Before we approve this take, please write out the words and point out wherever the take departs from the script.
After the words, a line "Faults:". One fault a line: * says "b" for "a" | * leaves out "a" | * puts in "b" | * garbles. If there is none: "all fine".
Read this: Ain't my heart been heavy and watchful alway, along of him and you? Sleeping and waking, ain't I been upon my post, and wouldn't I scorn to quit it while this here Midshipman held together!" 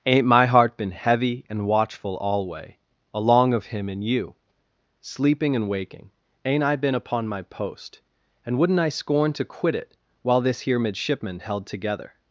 Ain't my heart been heavy and watchful alway, along of him and you? Sleeping and waking, ain't I been upon my post, and wouldn't I scorn to quit it while this here Midshipman held together!"
Faults:
all fine